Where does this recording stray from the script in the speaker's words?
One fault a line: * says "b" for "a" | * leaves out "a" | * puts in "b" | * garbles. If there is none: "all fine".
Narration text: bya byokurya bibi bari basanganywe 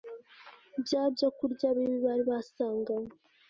all fine